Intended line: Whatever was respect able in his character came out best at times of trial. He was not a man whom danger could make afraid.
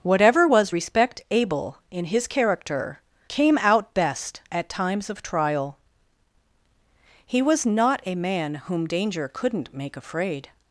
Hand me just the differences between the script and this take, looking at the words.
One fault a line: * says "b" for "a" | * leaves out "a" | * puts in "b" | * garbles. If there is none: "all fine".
* says "couldn't" for "could"